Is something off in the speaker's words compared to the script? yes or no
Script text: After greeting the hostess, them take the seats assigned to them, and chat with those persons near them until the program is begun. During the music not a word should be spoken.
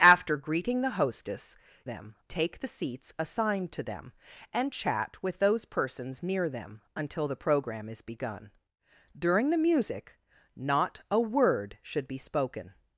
no